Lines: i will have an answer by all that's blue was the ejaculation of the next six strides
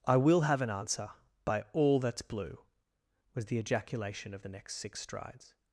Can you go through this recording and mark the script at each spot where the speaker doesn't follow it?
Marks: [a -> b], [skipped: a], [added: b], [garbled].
i will have an answer by all that's blue was the ejaculation of the next six strides